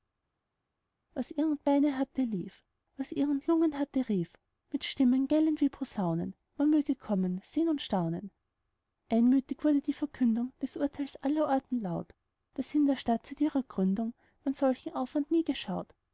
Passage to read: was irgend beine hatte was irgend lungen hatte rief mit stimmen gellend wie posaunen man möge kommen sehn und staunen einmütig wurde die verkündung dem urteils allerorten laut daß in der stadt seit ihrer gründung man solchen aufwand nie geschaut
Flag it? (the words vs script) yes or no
yes